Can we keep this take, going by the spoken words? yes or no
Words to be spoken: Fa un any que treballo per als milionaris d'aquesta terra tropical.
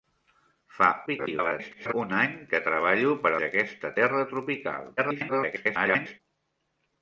no